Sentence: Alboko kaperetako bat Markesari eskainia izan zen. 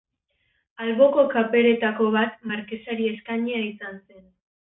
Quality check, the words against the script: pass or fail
pass